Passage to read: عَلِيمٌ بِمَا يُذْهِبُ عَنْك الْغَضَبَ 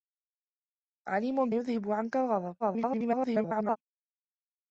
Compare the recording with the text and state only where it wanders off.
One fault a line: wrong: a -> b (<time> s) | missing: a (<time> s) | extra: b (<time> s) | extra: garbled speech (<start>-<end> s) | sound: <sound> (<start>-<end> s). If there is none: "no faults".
missing: بِمَا (1.5 s)
extra: garbled speech (2.6-3.8 s)